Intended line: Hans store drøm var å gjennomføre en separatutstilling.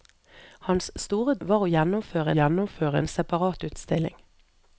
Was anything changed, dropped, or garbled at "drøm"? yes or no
yes